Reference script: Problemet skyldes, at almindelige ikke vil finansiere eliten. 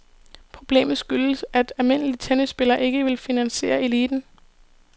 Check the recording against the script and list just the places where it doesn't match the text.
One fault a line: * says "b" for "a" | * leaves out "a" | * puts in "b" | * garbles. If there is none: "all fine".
* puts in "tennisspillere"